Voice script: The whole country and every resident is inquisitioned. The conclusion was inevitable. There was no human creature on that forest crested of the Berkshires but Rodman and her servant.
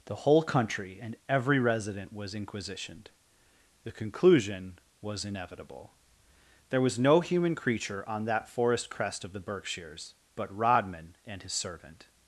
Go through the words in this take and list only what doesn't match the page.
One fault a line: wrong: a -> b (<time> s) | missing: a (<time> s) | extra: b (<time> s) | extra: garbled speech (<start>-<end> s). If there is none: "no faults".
wrong: is -> was (2.1 s)
wrong: crested -> crest (8.9 s)
wrong: her -> his (11.4 s)